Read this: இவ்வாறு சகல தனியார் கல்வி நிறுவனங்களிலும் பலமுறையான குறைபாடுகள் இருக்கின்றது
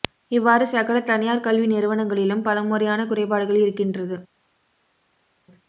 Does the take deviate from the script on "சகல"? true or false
false